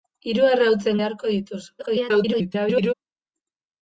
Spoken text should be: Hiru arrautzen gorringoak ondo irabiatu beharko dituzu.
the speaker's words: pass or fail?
fail